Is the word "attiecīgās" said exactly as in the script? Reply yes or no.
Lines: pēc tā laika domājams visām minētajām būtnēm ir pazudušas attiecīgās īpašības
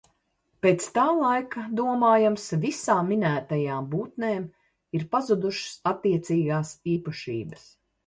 yes